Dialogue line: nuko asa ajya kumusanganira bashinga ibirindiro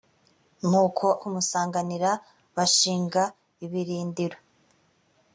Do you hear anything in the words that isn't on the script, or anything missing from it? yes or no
yes